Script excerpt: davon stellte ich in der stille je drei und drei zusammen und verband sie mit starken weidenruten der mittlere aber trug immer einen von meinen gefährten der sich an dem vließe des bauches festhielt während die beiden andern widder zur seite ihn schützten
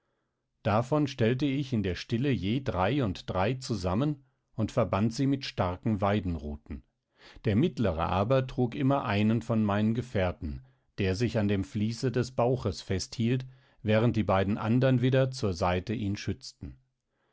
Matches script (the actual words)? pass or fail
pass